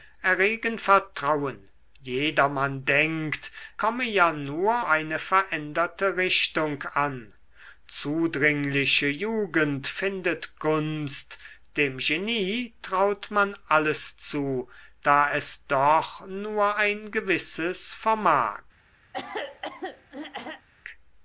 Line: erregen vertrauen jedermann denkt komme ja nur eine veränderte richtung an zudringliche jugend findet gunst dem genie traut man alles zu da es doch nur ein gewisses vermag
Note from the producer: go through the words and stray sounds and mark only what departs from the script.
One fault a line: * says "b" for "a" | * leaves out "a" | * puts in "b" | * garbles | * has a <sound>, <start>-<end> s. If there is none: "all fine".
* has a throat clearing, 19.1-20.7 s